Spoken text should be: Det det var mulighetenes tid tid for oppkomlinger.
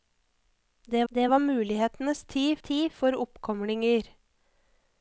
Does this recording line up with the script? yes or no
yes